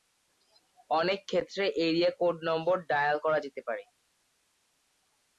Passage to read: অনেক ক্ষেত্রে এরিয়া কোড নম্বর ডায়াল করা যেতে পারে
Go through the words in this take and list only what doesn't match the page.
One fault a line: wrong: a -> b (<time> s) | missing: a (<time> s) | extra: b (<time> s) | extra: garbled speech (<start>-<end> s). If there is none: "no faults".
no faults